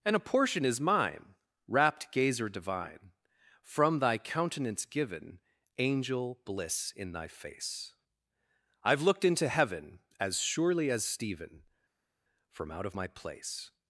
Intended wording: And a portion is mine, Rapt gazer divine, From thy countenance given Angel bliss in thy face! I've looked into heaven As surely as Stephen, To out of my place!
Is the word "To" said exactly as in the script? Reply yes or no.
no